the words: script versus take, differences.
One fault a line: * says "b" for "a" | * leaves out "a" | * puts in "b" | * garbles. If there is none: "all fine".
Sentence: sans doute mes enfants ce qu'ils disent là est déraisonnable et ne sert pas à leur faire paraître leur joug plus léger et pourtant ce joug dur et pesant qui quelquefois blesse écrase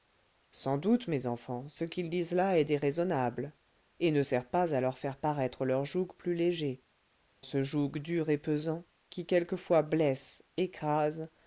* leaves out "et pourtant"